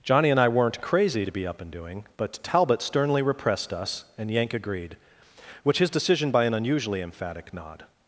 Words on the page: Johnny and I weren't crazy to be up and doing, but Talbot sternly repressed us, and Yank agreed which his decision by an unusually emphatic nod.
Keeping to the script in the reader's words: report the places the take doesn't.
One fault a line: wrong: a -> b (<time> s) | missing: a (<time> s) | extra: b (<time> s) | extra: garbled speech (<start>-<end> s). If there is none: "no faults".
no faults